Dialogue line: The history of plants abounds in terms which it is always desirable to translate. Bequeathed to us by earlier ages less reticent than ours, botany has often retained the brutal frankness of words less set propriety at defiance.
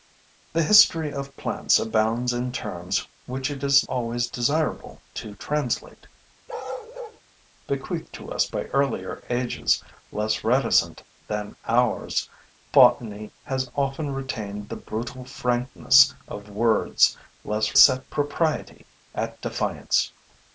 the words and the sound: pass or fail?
fail